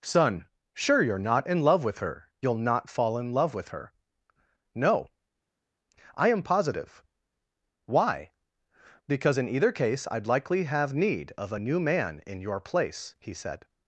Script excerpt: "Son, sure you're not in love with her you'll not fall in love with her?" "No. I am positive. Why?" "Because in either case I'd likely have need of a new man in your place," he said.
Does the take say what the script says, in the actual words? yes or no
yes